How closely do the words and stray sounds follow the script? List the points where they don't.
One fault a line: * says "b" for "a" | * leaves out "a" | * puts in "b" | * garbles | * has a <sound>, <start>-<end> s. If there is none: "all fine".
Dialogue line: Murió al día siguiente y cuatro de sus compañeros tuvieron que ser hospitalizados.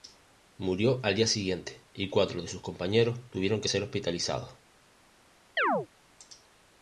* has a chirp, 5.6-5.9 s